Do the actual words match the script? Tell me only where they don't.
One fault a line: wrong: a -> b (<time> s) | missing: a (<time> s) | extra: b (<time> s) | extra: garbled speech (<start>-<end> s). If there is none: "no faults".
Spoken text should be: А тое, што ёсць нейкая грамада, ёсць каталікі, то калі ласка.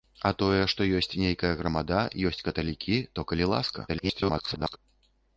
extra: garbled speech (3.9-4.8 s)